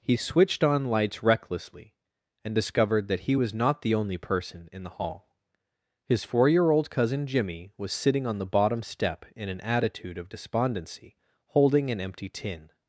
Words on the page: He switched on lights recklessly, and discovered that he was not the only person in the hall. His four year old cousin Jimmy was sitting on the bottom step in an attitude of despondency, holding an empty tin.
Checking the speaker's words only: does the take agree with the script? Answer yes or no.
yes